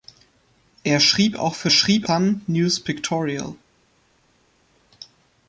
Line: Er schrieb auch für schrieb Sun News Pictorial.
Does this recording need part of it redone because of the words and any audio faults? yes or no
no